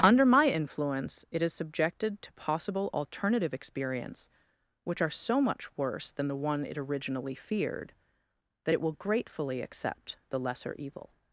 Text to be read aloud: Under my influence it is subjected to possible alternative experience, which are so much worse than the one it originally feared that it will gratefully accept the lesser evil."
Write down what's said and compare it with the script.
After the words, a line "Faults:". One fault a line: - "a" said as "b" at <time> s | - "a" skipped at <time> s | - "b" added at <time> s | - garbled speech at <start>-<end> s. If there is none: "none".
Under my influence it is subjected to possible alternative experience, which are so much worse than the one it originally feared that it will gratefully accept the lesser evil."
Faults:
none